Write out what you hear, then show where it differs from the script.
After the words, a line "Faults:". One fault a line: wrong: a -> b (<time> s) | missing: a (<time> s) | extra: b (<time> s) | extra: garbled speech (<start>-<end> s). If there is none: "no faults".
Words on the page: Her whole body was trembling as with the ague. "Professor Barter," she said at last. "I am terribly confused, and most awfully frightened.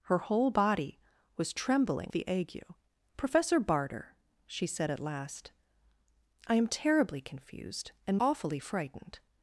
Her whole body was trembling the ague. "Professor Barter," she said at last. "I am terribly confused, and awfully frightened.
Faults:
missing: as with (2.1 s)
missing: most (8.2 s)